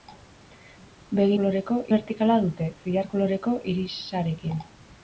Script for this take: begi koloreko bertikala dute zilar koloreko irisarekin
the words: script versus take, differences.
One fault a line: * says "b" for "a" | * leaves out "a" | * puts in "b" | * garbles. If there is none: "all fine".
all fine